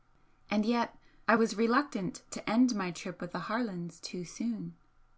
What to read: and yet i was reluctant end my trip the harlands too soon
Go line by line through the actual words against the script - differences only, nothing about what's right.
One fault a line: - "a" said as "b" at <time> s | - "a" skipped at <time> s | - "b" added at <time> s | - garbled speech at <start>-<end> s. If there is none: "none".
- "to" added at 2.3 s
- "with" added at 3.2 s